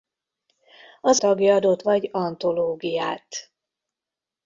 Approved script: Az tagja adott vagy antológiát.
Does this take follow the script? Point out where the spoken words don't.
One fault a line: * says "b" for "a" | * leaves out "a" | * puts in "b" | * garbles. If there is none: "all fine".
all fine